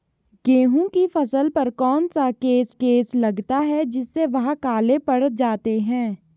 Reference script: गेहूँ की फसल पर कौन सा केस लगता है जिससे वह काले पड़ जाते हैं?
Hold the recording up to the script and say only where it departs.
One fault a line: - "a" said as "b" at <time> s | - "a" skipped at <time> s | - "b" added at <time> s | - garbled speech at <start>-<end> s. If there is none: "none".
- "केस" added at 2.7 s